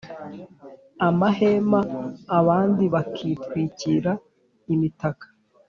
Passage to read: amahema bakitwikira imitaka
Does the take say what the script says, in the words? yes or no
no